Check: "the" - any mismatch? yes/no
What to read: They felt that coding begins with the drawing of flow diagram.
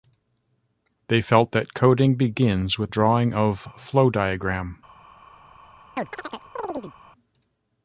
yes